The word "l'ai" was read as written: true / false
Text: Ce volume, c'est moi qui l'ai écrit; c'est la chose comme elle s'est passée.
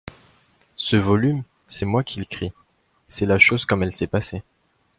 false